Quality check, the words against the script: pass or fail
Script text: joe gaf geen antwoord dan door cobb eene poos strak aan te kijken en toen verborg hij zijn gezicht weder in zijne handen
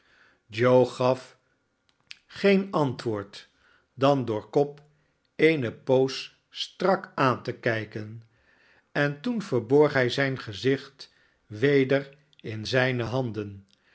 pass